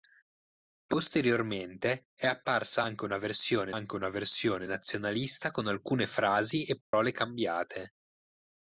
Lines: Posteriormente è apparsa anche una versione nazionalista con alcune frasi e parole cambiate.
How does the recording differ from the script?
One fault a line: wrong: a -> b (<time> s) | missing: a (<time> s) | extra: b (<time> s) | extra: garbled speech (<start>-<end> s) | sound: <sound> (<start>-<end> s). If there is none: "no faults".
extra: anche una versione (3.7 s)
sound: dropout (6.8-6.9 s)